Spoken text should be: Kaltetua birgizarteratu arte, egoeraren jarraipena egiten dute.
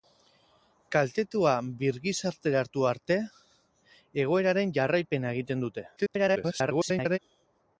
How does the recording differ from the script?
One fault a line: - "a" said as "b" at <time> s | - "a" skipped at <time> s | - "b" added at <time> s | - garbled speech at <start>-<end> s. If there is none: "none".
- garbled speech at 6.0-7.2 s